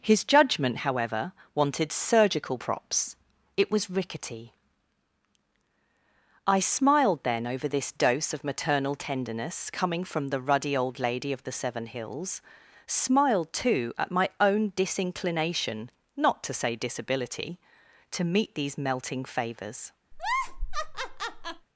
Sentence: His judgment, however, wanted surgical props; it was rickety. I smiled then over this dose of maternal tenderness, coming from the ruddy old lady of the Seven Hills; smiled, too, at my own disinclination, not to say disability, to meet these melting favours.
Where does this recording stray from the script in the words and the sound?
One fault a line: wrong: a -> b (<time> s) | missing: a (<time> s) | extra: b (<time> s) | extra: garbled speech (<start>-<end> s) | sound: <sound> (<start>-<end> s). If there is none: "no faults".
sound: laugh (20.1-21.7 s)